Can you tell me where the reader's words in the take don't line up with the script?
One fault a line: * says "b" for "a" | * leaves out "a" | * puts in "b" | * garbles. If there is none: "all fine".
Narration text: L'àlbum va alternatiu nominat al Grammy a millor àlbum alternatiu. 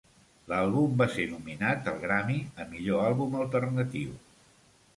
* says "ser" for "alternatiu"